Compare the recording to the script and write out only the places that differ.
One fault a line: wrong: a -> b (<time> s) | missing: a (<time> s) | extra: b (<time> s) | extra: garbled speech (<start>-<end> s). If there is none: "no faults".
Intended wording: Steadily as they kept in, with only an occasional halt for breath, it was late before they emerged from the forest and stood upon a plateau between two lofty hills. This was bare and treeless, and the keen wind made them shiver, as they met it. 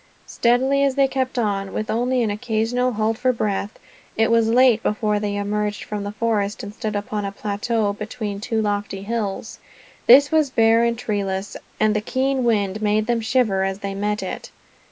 wrong: in -> on (1.4 s)